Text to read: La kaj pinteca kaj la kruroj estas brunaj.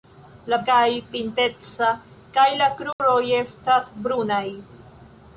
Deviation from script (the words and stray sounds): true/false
true